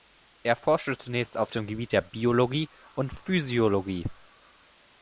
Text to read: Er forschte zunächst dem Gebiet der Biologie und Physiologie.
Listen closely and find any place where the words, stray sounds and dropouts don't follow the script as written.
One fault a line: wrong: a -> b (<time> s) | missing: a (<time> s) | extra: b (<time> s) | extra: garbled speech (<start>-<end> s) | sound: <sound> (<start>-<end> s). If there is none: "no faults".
extra: auf (1.4 s)